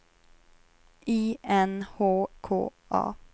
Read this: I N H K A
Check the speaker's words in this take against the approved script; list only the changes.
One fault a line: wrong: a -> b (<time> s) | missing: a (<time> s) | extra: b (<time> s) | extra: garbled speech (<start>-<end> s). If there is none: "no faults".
no faults